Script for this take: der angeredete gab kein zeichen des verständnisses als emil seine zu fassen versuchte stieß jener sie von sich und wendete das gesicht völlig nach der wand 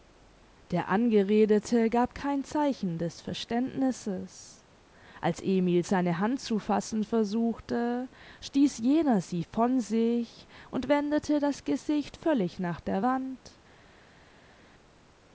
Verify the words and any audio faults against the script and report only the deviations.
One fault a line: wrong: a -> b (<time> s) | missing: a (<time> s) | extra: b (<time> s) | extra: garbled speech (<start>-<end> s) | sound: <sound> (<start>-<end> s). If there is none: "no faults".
extra: hand (6.2 s)